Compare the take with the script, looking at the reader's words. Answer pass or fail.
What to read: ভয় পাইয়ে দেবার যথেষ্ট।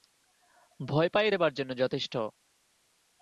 fail